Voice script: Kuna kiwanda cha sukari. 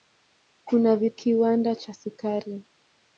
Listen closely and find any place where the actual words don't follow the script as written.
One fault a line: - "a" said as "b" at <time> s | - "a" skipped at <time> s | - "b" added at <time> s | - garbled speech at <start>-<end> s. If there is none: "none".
none